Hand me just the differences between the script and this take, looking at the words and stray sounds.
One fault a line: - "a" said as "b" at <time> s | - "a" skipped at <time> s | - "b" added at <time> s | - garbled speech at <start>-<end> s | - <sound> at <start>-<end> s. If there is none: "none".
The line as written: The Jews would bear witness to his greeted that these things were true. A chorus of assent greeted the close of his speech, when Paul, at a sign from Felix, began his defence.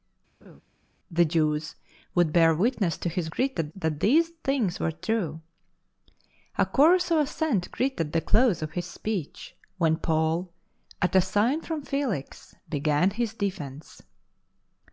- laugh at 0.4-0.6 s